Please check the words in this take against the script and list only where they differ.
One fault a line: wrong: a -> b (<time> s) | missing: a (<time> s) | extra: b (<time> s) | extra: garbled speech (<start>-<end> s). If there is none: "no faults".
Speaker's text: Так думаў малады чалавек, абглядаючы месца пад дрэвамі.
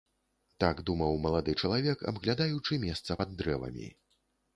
no faults